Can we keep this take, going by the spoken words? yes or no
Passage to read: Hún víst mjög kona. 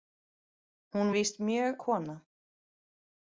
yes